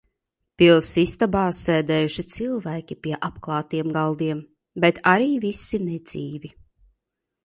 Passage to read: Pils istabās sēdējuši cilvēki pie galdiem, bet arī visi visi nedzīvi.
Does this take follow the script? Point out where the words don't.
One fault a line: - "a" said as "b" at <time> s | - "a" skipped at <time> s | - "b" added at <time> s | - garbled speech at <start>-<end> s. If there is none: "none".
- "apklātiem" added at 3.3 s
- "visi" skipped at 5.8 s